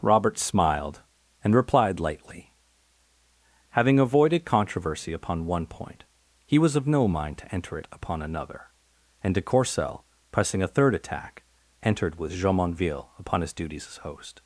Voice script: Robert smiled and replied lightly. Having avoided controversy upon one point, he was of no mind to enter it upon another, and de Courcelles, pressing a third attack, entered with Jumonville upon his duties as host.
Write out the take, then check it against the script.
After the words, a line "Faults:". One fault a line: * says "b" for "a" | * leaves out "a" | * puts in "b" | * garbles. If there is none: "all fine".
Robert smiled and replied lightly. Having avoided controversy upon one point, he was of no mind to enter it upon another, and de Courcelles, pressing a third attack, entered with Jumonville upon his duties as host.
Faults:
all fine